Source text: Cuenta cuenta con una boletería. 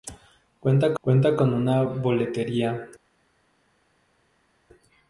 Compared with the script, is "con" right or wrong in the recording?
right